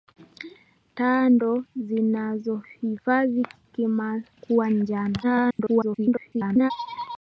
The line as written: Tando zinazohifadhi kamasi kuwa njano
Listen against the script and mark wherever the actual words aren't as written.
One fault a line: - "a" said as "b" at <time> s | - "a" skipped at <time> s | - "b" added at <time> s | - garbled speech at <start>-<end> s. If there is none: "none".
- "kamasi" skipped at 3.5 s
- garbled speech at 5.2-6.7 s